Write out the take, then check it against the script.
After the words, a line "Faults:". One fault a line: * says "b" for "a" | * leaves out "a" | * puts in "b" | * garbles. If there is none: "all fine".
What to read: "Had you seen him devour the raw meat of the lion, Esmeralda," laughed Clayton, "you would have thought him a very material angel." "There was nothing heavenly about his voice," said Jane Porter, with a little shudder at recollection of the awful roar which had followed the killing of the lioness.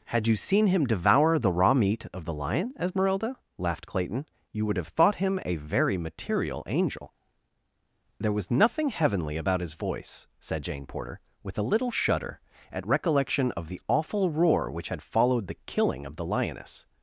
"Had you seen him devour the raw meat of the lion, Esmeralda," laughed Clayton, "you would have thought him a very material angel." "There was nothing heavenly about his voice," said Jane Porter, with a little shudder at recollection of the awful roar which had followed the killing of the lioness.
Faults:
all fine